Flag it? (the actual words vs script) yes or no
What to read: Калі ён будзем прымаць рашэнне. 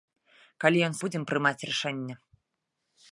no